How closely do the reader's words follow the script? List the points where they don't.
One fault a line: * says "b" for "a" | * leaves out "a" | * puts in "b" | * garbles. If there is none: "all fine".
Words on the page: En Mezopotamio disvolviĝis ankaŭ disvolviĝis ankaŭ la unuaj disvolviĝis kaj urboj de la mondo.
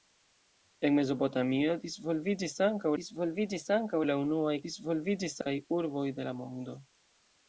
all fine